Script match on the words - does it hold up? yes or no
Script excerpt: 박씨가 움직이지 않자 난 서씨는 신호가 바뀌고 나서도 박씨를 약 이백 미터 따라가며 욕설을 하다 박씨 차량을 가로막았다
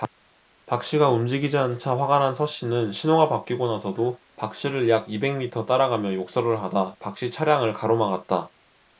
no